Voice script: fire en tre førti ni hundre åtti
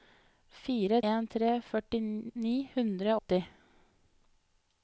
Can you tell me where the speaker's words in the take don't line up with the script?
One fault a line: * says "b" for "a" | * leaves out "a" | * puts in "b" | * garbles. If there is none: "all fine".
all fine